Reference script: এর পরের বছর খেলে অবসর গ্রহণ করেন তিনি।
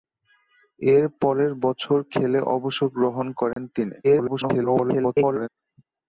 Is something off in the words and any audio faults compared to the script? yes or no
yes